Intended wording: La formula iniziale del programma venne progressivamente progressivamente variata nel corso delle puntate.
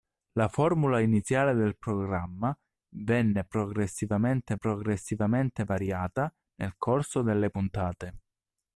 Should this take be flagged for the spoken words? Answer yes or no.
no